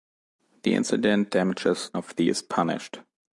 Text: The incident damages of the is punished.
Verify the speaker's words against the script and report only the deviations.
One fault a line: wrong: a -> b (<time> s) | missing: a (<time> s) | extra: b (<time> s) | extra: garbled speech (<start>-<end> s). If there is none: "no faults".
no faults